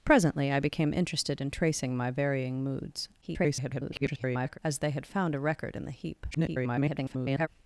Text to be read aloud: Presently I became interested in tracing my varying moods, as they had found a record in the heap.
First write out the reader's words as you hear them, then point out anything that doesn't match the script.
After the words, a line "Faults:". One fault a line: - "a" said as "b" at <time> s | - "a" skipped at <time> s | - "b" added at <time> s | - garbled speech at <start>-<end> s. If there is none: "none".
Presently I became interested in tracing my varying moods, [garbled] as they had found a record in the heap. [garbled]
Faults:
- garbled speech at 3.2-4.6 s
- garbled speech at 6.3-7.5 s